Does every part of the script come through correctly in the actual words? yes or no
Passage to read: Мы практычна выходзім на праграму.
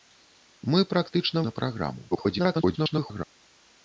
no